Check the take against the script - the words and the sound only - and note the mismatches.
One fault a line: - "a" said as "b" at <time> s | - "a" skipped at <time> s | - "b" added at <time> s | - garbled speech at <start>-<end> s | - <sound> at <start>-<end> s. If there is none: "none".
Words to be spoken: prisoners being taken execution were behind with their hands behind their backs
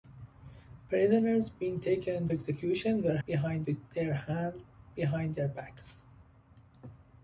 none